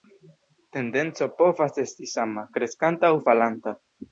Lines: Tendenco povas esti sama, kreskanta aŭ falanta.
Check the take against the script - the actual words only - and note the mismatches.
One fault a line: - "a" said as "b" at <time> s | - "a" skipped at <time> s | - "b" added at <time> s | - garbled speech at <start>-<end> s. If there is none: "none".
none